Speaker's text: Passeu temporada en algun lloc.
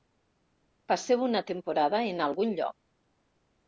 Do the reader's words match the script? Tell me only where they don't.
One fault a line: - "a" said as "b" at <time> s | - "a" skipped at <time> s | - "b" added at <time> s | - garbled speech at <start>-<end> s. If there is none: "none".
- "una" added at 1.3 s